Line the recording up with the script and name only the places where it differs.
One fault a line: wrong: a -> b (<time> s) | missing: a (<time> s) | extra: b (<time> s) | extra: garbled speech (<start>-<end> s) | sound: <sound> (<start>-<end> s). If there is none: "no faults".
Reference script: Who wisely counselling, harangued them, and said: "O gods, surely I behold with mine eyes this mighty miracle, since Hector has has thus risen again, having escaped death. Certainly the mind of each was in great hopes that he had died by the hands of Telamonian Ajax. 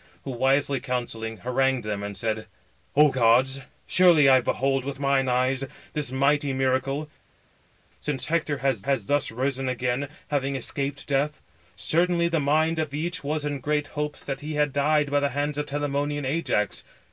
no faults